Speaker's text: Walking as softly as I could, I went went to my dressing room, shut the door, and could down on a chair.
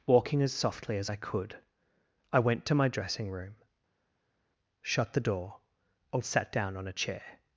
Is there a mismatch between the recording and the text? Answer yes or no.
yes